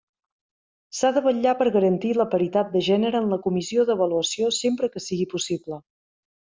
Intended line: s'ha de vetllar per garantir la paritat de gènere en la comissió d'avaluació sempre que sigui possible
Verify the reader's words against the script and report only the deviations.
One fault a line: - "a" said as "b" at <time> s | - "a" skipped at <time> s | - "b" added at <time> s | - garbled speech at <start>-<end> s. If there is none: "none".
none